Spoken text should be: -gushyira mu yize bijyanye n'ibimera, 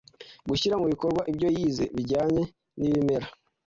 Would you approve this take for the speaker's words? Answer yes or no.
no